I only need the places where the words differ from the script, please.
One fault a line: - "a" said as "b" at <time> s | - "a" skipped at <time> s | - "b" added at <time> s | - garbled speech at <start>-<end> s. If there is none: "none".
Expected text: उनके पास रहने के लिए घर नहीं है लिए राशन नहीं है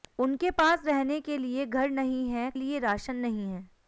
none